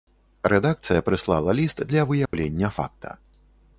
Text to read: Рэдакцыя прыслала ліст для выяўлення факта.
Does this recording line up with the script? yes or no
yes